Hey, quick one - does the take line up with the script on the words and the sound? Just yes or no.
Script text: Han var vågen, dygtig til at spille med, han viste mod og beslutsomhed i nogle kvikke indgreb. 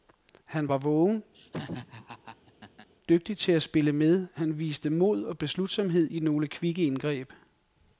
no